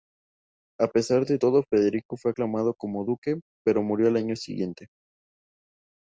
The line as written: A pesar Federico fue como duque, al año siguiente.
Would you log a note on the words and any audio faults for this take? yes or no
yes